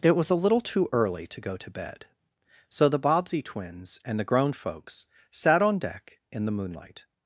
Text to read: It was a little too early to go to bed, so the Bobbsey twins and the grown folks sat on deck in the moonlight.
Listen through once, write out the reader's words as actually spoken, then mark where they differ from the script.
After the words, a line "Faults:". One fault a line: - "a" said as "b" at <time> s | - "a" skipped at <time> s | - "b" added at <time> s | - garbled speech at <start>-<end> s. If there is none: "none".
It was a little too early to go to bed, so the Bobbsey twins and the grown folks sat on deck in the moonlight.
Faults:
none